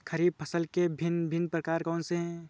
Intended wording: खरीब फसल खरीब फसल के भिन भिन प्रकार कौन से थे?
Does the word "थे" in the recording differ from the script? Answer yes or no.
yes